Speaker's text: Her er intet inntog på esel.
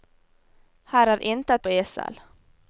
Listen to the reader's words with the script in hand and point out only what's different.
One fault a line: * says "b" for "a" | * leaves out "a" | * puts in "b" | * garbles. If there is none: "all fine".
* leaves out "inntog"